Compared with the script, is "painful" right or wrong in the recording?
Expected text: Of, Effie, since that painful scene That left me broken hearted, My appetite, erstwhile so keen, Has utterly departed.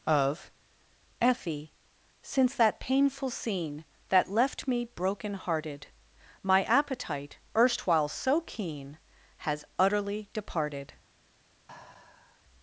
right